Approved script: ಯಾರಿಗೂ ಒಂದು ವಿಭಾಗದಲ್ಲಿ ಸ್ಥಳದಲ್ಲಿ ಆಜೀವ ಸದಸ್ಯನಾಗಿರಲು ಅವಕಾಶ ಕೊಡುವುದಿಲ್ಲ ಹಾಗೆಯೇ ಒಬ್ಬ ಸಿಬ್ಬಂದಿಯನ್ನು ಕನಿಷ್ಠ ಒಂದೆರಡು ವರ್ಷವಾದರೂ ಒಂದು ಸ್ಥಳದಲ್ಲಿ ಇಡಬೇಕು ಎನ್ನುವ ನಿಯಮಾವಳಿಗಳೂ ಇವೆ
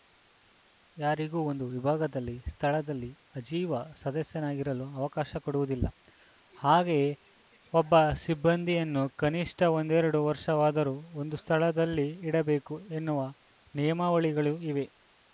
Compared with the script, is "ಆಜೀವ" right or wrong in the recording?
right